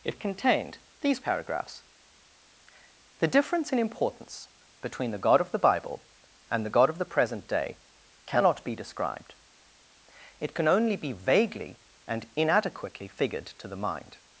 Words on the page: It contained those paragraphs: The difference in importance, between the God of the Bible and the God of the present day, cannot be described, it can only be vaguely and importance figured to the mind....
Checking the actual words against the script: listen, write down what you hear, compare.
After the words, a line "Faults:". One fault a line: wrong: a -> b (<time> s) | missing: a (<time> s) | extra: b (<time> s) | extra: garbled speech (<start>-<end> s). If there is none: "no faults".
It contained these paragraphs: The difference in importance, between the God of the Bible and the God of the present day, cannot be described, it can only be vaguely and inadequately figured to the mind....
Faults:
wrong: those -> these (1.0 s)
wrong: importance -> inadequately (12.3 s)